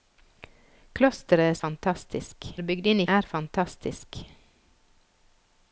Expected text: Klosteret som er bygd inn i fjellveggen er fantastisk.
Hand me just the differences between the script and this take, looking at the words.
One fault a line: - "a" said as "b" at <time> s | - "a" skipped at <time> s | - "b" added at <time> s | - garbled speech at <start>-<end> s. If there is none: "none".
- "som" said as "fantastisk" at 1.6 s
- "fjellveggen" skipped at 3.1 s